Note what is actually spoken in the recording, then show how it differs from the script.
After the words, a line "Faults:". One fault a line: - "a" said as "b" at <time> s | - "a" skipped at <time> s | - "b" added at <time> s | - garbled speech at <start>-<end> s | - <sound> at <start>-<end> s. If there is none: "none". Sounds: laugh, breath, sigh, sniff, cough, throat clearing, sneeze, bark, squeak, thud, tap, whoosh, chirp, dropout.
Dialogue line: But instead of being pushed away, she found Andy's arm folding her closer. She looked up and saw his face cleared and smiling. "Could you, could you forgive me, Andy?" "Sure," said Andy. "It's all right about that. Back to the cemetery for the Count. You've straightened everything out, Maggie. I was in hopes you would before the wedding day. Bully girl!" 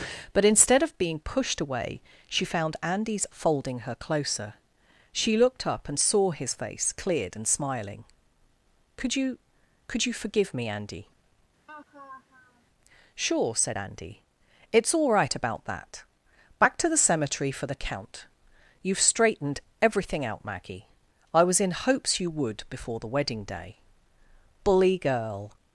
But instead of being pushed away, she found Andy's folding her closer. She looked up and saw his face cleared and smiling. "Could you, could you forgive me, Andy?" "Sure," said Andy. "It's all right about that. Back to the cemetery for the Count. You've straightened everything out, Maggie. I was in hopes you would before the wedding day. Bully girl!"
Faults:
- "arm" skipped at 3.3 s
- laugh at 11.7-12.7 s